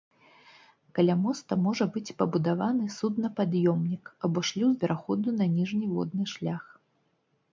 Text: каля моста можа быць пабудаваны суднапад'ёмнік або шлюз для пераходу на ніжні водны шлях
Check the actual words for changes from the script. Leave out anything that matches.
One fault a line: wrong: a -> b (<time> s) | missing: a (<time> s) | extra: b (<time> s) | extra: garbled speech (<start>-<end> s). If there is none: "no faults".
missing: для (4.7 s)